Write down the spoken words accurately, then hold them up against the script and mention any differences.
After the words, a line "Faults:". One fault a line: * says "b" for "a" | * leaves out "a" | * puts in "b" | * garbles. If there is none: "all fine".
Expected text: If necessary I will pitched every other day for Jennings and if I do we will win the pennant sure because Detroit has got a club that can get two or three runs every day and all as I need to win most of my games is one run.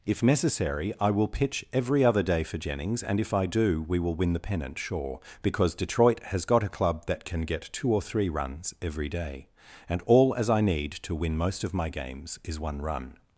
If necessary I will pitch every other day for Jennings and if I do we will win the pennant sure because Detroit has got a club that can get two or three runs every day and all as I need to win most of my games is one run.
Faults:
* says "pitch" for "pitched"